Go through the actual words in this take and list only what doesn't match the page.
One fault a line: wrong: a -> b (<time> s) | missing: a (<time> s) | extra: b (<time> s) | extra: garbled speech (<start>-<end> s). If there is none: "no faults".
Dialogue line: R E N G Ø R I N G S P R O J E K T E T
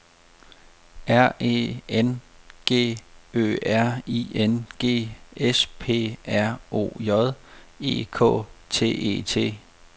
no faults